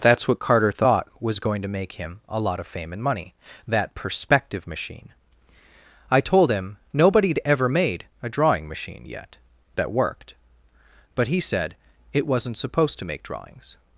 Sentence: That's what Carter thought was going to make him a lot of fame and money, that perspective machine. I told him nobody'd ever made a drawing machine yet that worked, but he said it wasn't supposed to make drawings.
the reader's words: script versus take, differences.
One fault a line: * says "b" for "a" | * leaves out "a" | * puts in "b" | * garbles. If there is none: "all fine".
all fine